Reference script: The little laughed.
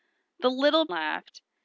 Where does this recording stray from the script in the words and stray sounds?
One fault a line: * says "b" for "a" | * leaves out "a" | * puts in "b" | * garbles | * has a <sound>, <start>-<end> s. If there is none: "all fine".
all fine